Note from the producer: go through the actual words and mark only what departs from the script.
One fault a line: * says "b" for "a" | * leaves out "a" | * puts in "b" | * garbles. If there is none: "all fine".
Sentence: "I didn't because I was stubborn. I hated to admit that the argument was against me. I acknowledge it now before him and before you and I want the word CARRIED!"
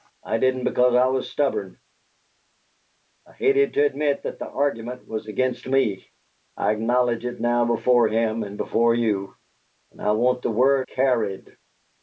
all fine